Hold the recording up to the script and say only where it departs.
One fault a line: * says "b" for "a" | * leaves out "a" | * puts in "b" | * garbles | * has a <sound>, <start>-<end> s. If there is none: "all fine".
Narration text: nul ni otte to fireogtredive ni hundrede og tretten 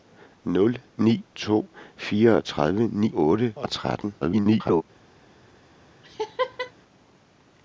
* leaves out "otte"
* says "otte" for "hundrede"
* garbles
* has a laugh, 6.0-6.7 s